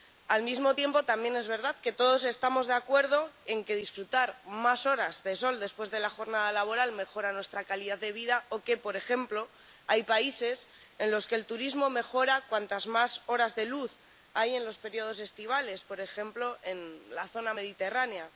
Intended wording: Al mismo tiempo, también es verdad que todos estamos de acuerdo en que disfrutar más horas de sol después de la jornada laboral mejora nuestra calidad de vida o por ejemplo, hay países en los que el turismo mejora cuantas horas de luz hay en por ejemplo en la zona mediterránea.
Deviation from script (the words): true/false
true